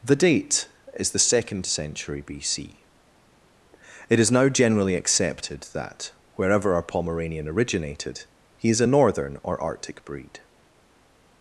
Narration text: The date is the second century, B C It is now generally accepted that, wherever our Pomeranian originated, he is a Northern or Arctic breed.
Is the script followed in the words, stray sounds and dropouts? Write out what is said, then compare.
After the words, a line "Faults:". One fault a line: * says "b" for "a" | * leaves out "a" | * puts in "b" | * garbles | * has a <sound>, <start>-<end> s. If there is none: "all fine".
The date is the second century, B C It is now generally accepted that, wherever our Pomeranian originated, he is a Northern or Arctic breed.
Faults:
all fine